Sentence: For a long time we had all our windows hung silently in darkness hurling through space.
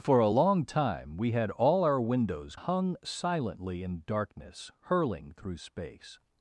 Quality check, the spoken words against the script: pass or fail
pass